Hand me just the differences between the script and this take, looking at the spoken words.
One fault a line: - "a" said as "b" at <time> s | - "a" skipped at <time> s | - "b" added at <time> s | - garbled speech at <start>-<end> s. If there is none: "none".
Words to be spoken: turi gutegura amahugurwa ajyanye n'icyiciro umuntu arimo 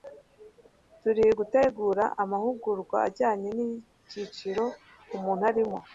none